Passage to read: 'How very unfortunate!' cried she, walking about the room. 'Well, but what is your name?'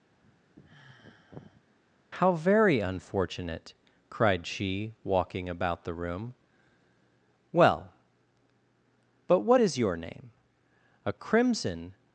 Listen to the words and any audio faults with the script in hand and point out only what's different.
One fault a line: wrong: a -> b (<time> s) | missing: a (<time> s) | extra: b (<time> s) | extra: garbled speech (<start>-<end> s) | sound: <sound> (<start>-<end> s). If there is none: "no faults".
sound: sigh (0.1-1.6 s)
extra: A crimson (11.0 s)